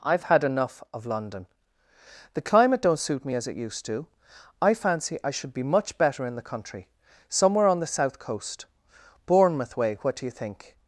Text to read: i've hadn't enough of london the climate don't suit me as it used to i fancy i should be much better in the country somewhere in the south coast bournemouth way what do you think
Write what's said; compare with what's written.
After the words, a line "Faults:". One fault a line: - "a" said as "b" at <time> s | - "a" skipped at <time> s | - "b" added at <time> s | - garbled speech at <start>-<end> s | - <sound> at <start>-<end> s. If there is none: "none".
i've had enough of london the climate don't suit me as it used to i fancy i should be much better in the country somewhere on the south coast bournemouth way what do you think
Faults:
- "hadn't" said as "had" at 0.2 s
- "in" said as "on" at 7.7 s